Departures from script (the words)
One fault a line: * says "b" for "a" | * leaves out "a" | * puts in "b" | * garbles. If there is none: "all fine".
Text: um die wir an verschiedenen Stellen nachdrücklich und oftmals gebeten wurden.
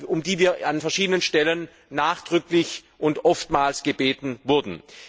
all fine